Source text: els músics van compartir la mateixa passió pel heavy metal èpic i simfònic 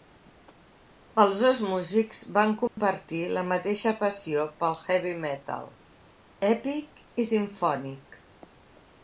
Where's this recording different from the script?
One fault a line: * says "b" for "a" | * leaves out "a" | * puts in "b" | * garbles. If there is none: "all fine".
* puts in "dos"